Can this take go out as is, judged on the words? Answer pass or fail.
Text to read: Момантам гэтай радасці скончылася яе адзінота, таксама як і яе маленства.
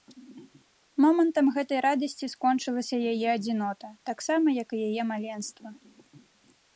pass